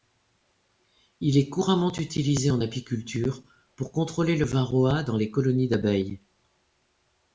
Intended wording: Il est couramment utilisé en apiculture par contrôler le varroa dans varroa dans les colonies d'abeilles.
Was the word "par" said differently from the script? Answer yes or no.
yes